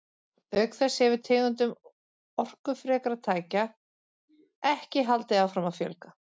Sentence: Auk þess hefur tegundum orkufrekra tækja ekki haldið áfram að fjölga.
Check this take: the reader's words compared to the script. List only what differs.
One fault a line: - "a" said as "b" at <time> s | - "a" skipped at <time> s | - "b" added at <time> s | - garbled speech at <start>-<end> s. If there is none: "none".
none